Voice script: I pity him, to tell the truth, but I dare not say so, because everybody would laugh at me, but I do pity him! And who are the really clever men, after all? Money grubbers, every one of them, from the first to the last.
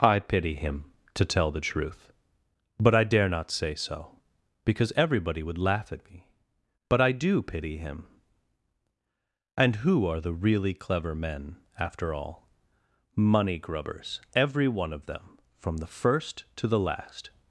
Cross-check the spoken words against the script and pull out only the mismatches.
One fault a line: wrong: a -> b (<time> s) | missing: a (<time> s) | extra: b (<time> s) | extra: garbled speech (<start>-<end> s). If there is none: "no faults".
no faults